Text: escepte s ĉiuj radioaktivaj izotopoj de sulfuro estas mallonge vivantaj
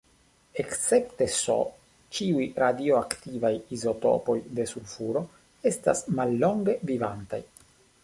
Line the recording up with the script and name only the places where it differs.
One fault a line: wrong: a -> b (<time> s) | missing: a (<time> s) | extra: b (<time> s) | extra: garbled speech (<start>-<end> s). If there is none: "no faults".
no faults